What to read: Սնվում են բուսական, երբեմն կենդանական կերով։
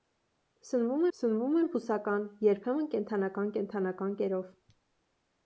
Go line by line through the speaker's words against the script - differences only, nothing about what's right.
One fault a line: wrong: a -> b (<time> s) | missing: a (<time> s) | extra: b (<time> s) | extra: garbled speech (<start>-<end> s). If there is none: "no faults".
extra: սնվում (1.2 s)
extra: կենդանական (3.6 s)